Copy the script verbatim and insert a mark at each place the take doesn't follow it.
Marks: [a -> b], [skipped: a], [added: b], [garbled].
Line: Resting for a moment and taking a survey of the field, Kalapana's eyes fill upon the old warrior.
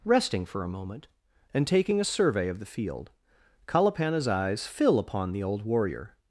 Resting for a moment and taking a survey of the field, Kalapana's eyes fill upon the old warrior.